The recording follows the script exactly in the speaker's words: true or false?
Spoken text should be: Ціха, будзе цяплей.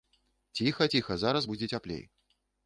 false